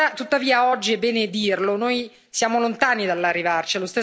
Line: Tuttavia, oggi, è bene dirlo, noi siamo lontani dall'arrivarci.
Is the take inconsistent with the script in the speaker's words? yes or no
no